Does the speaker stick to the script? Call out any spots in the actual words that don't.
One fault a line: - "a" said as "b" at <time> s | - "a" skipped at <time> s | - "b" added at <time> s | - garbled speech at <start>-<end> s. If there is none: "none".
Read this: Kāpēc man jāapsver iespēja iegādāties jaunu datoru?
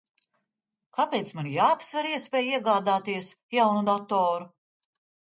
none